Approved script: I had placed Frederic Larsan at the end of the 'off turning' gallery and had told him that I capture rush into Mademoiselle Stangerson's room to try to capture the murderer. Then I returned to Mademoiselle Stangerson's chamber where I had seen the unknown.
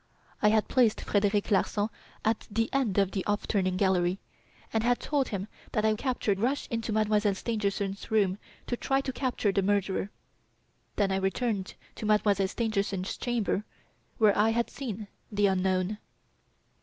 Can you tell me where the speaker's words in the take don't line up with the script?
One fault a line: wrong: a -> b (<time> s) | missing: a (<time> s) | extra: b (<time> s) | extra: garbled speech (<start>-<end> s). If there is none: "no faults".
no faults